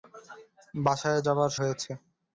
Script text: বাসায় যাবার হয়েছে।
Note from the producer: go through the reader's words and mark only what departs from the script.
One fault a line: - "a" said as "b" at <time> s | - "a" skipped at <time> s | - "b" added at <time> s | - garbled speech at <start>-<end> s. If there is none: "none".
none